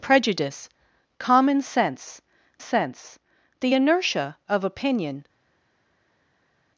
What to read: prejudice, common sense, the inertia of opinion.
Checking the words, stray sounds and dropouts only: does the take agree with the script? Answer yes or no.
no